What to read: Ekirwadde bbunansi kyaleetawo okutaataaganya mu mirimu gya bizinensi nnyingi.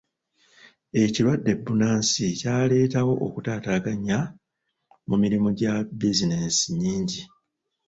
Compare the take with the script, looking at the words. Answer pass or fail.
pass